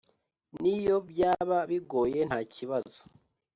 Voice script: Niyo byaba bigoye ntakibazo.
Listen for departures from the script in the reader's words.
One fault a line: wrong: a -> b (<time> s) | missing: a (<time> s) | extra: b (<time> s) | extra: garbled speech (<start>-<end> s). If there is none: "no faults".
no faults